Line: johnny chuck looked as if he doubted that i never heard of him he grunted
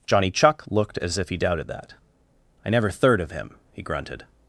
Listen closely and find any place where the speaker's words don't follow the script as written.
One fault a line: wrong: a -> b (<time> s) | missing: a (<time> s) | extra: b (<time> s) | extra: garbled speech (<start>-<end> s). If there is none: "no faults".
wrong: heard -> third (2.9 s)